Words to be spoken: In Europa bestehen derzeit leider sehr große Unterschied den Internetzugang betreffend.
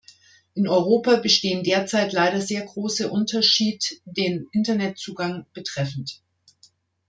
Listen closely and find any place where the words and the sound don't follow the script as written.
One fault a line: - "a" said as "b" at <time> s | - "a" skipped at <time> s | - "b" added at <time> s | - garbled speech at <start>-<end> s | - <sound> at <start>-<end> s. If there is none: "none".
none